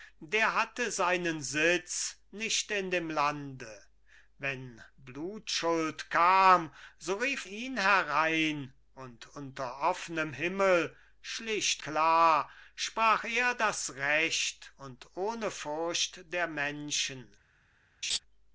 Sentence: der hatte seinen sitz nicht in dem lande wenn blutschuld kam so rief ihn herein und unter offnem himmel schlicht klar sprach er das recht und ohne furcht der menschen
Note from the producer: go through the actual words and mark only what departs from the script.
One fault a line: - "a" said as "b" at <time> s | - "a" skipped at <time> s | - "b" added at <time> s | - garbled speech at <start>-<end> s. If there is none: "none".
none